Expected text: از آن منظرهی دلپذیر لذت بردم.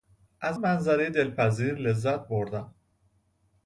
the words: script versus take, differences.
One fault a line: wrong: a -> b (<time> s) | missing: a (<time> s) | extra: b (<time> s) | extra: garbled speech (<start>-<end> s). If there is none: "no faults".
missing: آن (0.6 s)